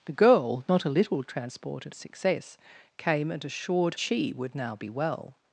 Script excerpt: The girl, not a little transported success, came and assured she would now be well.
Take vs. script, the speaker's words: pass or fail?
pass